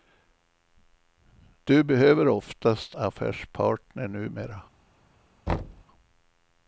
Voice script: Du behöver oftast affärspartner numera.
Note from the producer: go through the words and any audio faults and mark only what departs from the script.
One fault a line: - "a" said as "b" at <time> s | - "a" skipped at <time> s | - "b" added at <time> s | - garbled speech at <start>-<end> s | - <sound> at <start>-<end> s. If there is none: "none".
- thud at 5.5-5.8 s